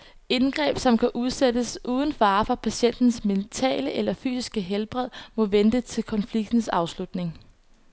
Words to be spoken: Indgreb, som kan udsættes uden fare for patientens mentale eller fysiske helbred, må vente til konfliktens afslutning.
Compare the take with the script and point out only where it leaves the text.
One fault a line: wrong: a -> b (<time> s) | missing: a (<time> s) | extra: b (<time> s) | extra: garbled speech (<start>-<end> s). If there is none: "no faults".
no faults